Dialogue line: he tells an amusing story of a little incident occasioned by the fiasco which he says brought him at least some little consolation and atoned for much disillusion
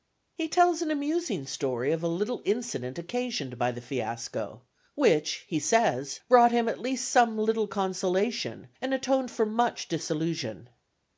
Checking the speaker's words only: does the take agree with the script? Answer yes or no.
yes